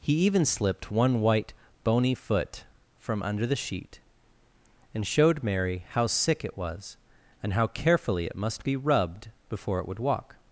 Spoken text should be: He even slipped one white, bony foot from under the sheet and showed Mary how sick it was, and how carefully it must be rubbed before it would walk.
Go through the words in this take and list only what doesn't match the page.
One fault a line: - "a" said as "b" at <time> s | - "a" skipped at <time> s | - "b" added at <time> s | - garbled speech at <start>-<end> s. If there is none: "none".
none